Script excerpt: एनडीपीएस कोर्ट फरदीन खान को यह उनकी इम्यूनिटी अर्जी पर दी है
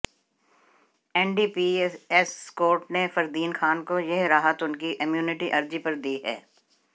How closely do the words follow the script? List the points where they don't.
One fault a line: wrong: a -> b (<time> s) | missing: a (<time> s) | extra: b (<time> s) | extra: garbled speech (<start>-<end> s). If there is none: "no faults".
extra: ने (2.9 s)
extra: राहत (4.2 s)